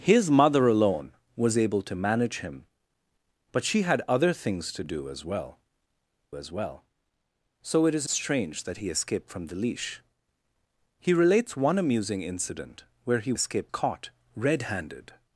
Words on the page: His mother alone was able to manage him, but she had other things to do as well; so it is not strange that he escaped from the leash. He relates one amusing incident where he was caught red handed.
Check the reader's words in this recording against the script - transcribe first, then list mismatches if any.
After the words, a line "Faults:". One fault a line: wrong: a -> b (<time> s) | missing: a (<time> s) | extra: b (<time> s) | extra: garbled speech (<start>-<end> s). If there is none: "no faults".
His mother alone was able to manage him, but she had other things to do as well as well; so it is strange that he escaped from the leash. He relates one amusing incident where he escaped caught red handed.
Faults:
extra: as well (6.3 s)
missing: not (8.1 s)
wrong: was -> escaped (13.3 s)